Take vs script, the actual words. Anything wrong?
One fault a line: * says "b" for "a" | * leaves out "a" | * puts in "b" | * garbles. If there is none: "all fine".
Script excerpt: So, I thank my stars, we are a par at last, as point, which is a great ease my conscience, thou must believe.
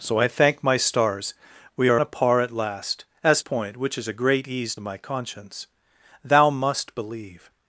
all fine